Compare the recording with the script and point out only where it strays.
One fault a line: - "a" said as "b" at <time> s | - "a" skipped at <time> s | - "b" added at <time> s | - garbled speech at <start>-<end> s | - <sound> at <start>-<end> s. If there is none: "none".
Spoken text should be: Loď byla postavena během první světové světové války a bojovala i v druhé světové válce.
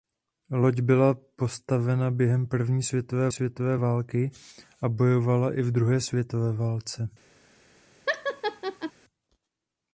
- laugh at 8.1-8.9 s